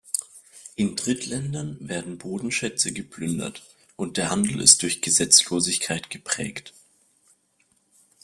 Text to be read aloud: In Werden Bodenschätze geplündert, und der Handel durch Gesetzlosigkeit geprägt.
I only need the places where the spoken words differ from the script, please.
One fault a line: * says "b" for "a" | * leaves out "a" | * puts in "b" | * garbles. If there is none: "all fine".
* puts in "Drittländern"
* puts in "ist"